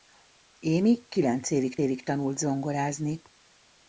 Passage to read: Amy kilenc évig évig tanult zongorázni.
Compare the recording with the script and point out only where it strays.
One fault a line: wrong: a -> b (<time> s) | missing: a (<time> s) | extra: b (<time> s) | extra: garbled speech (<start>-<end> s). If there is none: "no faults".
no faults